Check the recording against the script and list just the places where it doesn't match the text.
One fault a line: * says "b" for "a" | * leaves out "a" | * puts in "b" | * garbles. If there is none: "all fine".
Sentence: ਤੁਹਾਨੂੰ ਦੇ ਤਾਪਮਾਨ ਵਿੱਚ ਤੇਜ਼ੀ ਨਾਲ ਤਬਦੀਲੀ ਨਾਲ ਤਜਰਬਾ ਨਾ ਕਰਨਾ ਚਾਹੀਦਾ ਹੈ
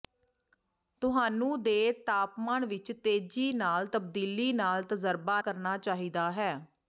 * leaves out "ਨਾ"